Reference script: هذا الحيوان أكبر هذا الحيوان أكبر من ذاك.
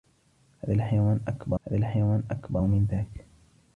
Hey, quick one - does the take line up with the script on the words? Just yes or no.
yes